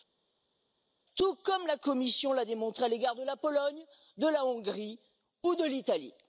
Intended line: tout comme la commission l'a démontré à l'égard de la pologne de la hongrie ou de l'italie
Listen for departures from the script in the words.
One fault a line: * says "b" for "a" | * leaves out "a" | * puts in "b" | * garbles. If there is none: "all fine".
all fine